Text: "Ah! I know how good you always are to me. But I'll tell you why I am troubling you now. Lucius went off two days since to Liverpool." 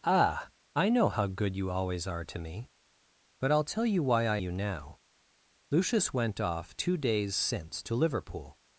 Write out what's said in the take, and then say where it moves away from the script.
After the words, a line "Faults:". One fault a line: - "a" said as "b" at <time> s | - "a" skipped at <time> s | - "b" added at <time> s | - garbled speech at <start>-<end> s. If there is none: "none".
"Ah! I know how good you always are to me. But I'll tell you why I you now. Lucius went off two days since to Liverpool."
Faults:
- "am troubling" skipped at 4.4 s